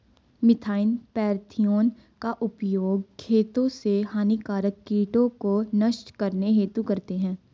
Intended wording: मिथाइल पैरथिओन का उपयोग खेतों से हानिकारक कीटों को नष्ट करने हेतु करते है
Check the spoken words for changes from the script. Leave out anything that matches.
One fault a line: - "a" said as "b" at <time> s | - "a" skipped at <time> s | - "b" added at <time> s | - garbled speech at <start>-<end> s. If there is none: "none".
none